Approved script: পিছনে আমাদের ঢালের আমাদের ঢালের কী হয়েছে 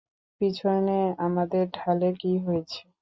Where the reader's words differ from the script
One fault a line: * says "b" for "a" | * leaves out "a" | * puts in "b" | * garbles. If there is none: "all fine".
* leaves out "আমাদের ঢালের"